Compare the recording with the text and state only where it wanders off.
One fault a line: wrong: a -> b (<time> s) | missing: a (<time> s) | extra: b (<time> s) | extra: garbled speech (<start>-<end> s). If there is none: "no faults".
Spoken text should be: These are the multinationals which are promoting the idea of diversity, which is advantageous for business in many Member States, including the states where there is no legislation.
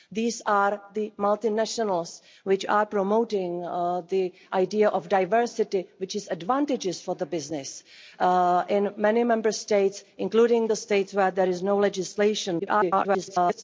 extra: garbled speech (12.6-13.6 s)